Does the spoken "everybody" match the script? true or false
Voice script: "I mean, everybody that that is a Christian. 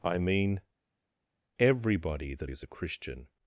true